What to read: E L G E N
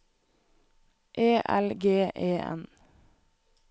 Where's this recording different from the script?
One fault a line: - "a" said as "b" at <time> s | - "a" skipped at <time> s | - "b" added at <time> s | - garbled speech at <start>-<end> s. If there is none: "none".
none